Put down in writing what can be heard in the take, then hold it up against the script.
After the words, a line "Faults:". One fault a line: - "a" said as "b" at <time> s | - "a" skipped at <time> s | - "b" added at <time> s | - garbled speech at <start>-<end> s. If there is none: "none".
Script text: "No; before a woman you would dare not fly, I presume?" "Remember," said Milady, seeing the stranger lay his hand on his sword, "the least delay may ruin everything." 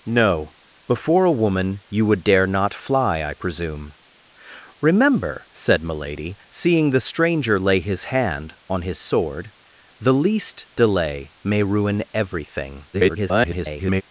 "No; before a woman you would dare not fly, I presume?" "Remember," said Milady, seeing the stranger lay his hand on his sword, "the least delay may ruin everything." [garbled]
Faults:
- garbled speech at 12.9-14.0 s